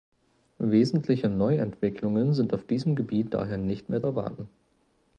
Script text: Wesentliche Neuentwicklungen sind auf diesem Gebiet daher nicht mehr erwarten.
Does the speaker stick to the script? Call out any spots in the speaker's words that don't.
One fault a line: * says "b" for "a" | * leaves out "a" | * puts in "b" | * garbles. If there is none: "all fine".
all fine